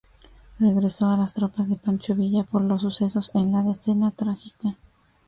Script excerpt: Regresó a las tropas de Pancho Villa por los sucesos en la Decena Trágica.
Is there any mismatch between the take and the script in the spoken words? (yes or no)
no